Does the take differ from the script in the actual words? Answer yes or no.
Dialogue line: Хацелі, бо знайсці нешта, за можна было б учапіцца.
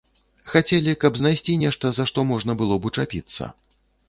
yes